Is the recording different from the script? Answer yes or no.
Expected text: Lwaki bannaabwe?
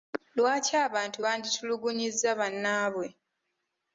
yes